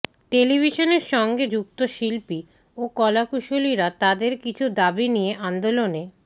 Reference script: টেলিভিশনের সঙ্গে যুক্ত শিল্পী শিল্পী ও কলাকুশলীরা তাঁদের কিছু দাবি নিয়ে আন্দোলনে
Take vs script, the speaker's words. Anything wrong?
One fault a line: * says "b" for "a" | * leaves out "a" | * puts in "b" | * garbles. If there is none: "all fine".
* leaves out "শিল্পী"